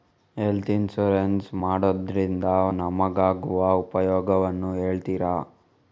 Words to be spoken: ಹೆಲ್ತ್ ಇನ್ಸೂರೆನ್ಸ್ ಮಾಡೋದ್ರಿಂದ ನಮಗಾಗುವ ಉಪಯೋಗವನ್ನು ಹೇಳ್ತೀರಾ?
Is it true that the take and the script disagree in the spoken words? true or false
false